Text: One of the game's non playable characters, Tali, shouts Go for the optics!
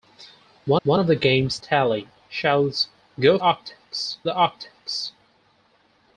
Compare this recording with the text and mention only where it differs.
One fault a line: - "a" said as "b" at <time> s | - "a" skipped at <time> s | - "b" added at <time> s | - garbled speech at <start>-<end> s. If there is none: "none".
- "one" added at 0.8 s
- "non playable characters" skipped at 1.6 s
- "for" said as "optics" at 3.4 s